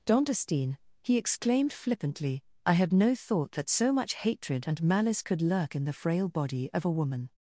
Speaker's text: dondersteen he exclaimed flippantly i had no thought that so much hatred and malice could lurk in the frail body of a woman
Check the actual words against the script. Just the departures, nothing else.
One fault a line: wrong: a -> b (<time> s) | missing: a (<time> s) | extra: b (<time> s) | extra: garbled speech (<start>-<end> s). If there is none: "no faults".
no faults